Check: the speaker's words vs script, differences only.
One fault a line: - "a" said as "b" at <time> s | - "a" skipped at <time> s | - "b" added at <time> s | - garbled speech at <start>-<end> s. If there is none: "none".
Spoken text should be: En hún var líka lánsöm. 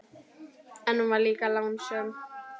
none